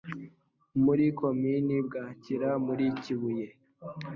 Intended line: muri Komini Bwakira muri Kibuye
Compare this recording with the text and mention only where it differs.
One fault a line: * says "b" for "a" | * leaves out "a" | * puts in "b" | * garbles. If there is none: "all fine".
all fine